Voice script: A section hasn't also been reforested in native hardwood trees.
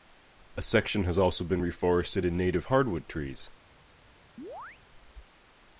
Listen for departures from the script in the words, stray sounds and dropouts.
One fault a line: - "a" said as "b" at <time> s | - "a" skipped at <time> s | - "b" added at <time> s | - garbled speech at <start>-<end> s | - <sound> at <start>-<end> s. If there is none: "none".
- "hasn't" said as "has" at 1.0 s
- chirp at 4.4-4.8 s